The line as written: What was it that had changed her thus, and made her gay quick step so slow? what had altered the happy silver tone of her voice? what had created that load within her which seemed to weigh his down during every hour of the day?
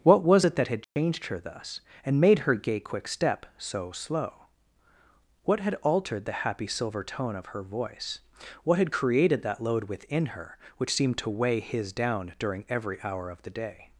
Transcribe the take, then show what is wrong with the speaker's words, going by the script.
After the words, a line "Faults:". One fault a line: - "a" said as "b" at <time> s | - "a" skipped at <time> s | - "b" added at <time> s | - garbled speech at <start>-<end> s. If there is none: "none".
What was it that had changed her thus, and made her gay quick step so slow? what had altered the happy silver tone of her voice? what had created that load within her which seemed to weigh his down during every hour of the day?
Faults:
none